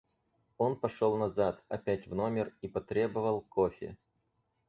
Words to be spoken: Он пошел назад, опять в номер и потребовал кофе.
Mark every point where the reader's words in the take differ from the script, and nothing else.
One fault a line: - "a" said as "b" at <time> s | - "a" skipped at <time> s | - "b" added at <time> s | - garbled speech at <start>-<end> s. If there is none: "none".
none